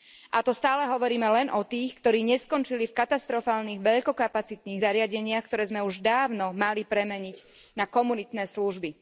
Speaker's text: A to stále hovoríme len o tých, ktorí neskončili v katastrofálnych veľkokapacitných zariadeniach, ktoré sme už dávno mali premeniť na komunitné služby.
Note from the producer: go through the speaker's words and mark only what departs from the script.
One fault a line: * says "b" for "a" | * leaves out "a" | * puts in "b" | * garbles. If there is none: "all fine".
all fine